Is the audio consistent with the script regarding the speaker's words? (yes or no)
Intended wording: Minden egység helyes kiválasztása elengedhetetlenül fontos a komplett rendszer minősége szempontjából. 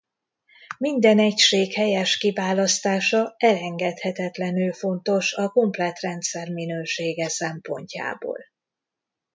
yes